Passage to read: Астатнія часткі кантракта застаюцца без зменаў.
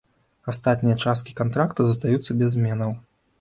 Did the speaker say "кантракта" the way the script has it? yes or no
yes